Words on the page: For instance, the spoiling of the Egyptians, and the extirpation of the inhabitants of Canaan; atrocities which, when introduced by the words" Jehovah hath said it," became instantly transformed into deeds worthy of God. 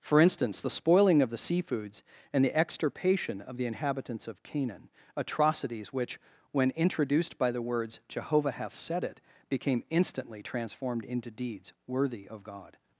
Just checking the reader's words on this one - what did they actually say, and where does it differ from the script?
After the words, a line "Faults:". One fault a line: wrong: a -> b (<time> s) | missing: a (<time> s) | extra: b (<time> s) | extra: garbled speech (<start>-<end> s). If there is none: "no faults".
For instance, the spoiling of the Seafoods, and the extirpation of the inhabitants of Canaan; atrocities which, when introduced by the words" Jehovah hath said it," became instantly transformed into deeds worthy of God.
Faults:
wrong: Egyptians -> Seafoods (1.4 s)